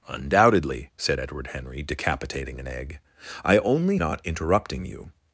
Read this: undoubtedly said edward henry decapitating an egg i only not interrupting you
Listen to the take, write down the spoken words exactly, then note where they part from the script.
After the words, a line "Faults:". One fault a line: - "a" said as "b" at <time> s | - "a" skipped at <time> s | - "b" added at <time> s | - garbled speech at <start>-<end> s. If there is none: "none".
undoubtedly said edward henry decapitating an egg i only not interrupting you
Faults:
none